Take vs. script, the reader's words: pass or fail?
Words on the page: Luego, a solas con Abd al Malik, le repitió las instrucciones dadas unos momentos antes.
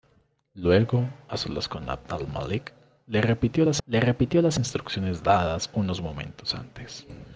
fail